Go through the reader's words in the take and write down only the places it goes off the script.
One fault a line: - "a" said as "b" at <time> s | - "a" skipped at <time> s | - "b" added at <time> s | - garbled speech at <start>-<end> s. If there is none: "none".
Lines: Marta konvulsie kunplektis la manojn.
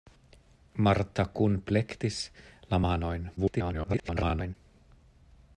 - "konvulsie" skipped at 1.2 s
- garbled speech at 3.4-4.5 s